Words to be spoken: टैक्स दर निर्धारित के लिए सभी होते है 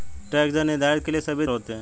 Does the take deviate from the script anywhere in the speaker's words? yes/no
no